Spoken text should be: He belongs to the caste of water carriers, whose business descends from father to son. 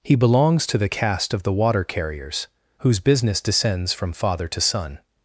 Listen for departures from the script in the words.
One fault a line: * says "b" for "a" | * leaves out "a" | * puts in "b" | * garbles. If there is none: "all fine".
* puts in "the"